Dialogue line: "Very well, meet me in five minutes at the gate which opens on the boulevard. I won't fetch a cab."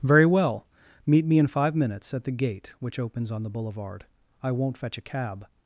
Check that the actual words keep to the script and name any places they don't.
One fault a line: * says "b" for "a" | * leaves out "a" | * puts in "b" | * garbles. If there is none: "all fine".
all fine